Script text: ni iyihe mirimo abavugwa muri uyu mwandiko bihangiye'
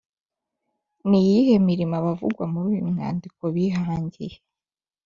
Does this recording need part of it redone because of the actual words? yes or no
no